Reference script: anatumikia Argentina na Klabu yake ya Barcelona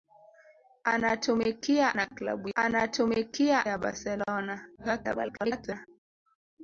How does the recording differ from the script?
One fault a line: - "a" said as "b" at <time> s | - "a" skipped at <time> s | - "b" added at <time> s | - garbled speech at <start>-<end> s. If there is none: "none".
- "Argentina" skipped at 2.0 s
- "yake" said as "anatumikia" at 2.5 s
- garbled speech at 4.8-5.9 s